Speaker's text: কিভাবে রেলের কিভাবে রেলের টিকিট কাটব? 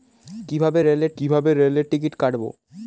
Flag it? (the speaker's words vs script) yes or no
no